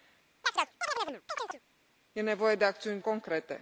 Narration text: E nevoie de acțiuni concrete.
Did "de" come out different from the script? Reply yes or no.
no